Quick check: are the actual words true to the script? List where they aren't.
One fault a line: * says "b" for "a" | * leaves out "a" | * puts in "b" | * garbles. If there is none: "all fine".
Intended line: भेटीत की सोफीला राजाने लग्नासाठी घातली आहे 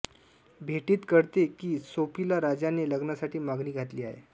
* puts in "कळते"
* puts in "मागणी"